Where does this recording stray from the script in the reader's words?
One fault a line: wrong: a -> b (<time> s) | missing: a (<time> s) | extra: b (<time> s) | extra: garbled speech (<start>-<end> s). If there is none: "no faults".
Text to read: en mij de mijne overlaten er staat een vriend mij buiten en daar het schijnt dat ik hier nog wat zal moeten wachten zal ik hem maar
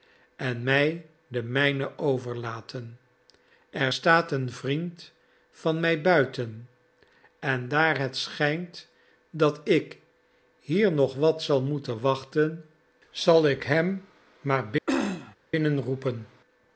extra: van (5.5 s)